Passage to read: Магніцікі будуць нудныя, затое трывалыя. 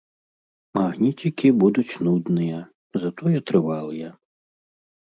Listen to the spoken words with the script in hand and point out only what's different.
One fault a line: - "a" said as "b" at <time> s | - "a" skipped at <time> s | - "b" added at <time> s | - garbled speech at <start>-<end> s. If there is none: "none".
none